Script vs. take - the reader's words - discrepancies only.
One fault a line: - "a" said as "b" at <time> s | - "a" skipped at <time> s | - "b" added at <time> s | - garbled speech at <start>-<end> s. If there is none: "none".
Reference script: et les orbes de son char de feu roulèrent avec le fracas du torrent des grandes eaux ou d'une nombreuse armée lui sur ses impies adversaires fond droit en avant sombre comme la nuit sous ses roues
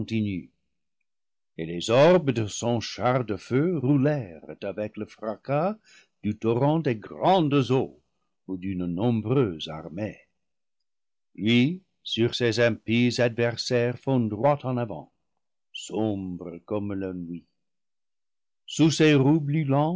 none